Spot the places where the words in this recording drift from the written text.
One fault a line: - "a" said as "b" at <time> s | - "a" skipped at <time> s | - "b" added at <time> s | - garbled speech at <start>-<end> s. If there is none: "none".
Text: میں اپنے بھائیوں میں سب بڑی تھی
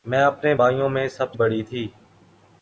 none